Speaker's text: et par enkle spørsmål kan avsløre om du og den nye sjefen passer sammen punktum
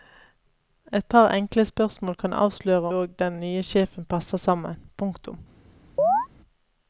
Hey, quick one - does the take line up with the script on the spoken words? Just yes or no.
no